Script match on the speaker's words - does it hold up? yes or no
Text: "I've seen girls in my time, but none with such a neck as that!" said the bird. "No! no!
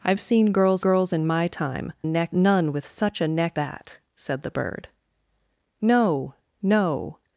no